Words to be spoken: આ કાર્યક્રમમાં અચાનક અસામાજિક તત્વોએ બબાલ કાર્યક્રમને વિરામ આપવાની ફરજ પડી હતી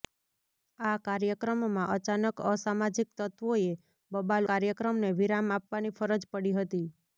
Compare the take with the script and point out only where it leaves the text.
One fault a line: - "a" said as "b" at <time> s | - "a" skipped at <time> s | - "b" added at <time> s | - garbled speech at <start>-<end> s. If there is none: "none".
none